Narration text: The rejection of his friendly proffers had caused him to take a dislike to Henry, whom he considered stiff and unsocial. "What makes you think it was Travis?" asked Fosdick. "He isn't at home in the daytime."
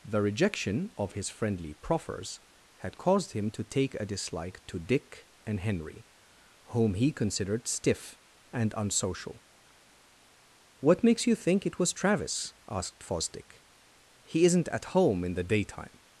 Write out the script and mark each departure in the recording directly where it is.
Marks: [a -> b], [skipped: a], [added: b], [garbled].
The rejection of his friendly proffers had caused him to take a dislike to [added: Dick and] Henry, whom he considered stiff and unsocial. "What makes you think it was Travis?" asked Fosdick. "He isn't at home in the daytime."